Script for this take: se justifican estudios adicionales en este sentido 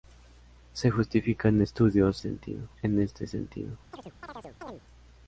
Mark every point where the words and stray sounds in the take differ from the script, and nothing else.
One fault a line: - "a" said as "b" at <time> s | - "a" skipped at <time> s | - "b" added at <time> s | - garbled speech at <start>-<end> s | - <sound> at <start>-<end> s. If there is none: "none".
- "adicionales" said as "sentido" at 2.2 s
- chirp at 3.9-4.8 s